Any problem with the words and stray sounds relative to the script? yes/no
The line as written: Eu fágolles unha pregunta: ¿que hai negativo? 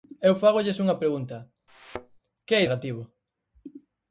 yes